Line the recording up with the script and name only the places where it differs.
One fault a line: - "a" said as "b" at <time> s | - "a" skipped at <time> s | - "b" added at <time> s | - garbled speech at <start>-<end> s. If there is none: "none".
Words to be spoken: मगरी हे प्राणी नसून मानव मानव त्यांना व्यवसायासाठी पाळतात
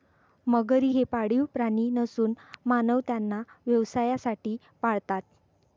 - "पाळीव" added at 1.0 s
- "मानव" skipped at 3.0 s